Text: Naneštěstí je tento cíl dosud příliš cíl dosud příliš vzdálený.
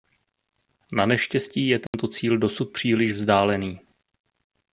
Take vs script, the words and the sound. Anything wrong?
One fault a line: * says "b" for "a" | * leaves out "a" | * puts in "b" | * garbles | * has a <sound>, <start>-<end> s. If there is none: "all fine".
* has a dropout, 1.9-1.9 s
* leaves out "cíl dosud příliš"